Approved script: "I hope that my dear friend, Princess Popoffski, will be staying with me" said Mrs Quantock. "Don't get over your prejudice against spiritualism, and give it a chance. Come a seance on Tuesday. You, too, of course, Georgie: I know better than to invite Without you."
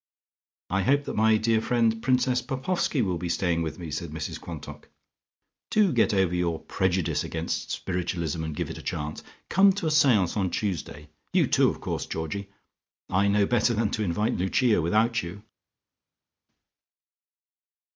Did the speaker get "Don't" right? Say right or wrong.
wrong